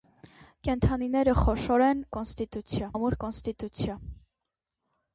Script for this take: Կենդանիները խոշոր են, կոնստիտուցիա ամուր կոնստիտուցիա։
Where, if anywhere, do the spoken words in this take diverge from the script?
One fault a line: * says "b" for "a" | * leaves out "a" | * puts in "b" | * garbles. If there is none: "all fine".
all fine